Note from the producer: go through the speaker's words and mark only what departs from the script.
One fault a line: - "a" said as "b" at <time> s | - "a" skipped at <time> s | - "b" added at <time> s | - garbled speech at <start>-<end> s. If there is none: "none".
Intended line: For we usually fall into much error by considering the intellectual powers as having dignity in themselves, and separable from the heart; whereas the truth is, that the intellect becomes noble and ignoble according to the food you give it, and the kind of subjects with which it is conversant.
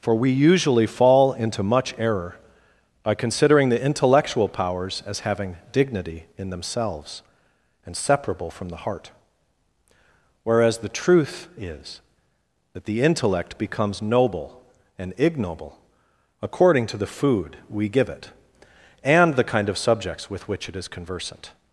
- "you" said as "we" at 17.7 s